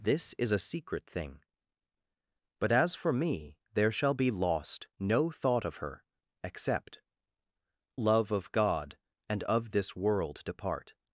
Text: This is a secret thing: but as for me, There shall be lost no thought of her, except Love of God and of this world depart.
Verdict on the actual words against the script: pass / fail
pass